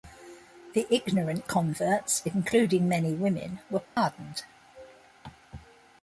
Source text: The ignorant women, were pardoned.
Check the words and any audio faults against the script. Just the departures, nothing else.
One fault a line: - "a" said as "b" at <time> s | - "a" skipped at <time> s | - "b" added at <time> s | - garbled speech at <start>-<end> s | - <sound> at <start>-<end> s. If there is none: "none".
- "converts including many" added at 1.5 s
- dropout at 3.9-4.0 s